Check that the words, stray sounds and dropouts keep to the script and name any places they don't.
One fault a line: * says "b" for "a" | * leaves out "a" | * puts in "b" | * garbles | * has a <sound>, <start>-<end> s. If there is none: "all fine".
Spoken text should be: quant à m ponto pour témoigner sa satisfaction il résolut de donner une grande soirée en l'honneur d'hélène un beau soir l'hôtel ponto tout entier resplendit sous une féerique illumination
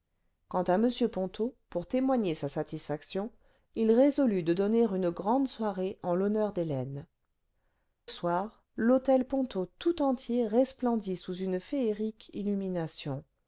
* leaves out "un beau"